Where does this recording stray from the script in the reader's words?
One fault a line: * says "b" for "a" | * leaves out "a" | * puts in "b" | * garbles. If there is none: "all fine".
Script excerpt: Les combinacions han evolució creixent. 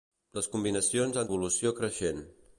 all fine